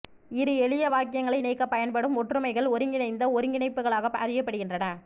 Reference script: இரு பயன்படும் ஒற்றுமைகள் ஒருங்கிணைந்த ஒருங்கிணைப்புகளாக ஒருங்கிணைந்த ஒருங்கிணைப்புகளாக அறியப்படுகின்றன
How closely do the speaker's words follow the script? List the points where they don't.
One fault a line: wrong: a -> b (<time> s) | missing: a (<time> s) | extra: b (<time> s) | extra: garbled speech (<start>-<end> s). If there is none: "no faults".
extra: எளிய வாக்கியங்களை இணைக்கப் (0.6 s)
missing: ஒருங்கிணைந்த ஒருங்கிணைப்புகளாக (4.1 s)